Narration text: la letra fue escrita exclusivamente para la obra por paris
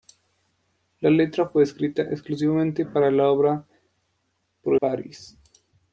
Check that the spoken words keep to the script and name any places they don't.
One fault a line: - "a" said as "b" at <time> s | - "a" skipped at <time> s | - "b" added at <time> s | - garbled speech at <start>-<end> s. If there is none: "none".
none